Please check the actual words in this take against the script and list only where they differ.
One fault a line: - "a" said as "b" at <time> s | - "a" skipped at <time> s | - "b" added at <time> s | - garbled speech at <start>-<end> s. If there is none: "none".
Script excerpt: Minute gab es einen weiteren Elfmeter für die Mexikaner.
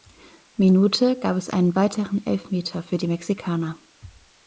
none